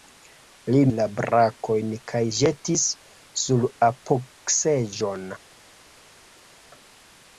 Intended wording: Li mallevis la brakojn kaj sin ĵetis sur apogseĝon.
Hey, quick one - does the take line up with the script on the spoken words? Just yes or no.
no